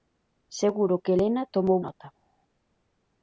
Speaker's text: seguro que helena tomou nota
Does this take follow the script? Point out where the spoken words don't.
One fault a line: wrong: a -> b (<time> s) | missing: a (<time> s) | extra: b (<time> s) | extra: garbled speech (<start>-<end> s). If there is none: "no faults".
no faults